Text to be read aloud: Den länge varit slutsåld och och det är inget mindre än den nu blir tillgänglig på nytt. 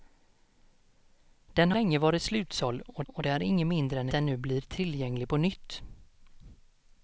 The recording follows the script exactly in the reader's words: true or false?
true